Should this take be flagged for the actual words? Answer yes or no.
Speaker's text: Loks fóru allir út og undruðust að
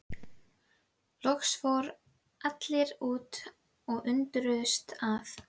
no